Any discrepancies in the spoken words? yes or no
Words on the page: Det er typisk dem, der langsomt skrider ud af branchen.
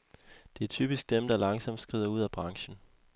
no